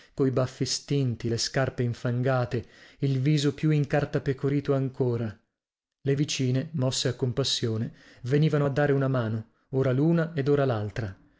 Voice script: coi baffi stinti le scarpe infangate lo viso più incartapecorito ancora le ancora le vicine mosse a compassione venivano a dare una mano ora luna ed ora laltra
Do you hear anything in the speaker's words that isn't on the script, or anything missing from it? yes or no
yes